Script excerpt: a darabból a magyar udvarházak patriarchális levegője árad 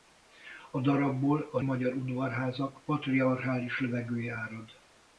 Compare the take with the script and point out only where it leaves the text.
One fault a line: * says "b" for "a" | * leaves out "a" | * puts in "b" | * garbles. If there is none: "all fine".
all fine